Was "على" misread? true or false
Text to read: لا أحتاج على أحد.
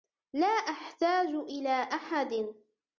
true